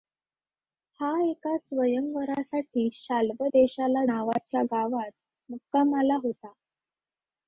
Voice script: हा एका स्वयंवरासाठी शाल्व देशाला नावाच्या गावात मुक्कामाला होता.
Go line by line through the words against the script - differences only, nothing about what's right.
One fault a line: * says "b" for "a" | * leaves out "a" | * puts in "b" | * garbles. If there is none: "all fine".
all fine